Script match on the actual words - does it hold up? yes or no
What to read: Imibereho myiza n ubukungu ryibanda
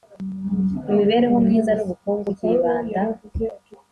yes